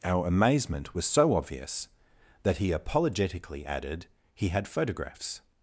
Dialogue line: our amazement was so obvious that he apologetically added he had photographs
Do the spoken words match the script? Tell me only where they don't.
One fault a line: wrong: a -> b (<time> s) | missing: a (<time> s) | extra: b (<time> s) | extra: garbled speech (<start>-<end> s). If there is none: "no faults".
no faults